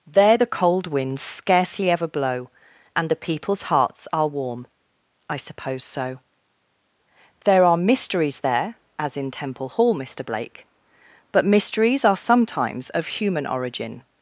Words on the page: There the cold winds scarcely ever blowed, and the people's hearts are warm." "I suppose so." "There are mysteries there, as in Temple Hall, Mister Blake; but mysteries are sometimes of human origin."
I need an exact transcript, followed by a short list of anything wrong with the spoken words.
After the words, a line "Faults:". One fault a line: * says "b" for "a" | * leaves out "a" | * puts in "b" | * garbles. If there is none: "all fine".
There the cold winds scarcely ever blow, and the people's hearts are warm." "I suppose so." "There are mysteries there, as in Temple Hall, Mister Blake; but mysteries are sometimes of human origin."
Faults:
* says "blow" for "blowed"